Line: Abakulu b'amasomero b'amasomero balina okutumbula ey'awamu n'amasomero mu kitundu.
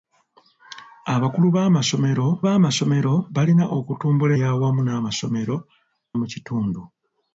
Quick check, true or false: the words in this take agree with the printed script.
true